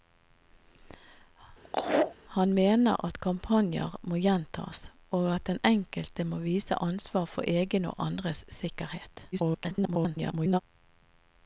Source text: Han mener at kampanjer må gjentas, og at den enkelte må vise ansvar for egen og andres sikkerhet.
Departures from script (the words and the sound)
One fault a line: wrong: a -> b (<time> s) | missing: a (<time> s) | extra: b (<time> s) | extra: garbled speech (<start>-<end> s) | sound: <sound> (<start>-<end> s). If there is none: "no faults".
sound: laugh (1.6-2.2 s)
extra: garbled speech (9.3-10.6 s)